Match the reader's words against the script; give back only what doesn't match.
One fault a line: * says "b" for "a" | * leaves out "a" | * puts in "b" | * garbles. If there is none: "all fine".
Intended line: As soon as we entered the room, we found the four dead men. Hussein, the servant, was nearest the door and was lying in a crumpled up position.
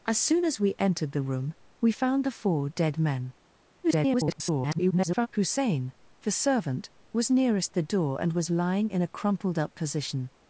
* garbles